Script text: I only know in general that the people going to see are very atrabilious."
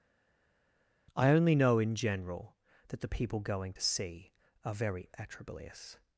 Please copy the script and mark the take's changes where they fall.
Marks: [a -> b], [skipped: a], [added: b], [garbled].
I only know in general that the people going to see are very atrabilious."